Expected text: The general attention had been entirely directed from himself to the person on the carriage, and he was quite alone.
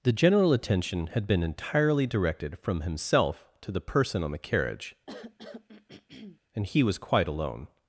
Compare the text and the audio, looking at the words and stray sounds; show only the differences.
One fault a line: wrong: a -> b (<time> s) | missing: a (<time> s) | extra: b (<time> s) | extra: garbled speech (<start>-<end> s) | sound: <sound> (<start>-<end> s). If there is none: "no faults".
sound: throat clearing (5.1-6.4 s)